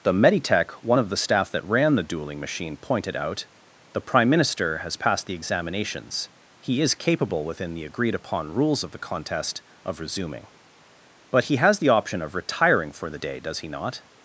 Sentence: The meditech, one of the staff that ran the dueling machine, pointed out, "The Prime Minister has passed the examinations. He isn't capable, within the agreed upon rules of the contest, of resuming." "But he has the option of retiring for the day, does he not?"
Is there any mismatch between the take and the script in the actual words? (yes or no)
yes